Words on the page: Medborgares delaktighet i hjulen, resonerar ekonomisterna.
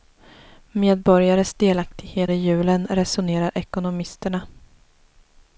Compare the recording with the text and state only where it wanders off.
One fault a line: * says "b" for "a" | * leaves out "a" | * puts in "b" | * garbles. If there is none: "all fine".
all fine